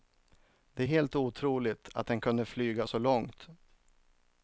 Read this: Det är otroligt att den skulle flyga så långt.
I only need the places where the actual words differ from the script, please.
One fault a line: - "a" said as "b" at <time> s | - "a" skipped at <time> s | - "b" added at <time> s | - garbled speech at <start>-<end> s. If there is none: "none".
- "helt" added at 0.8 s
- "skulle" said as "kunde" at 2.2 s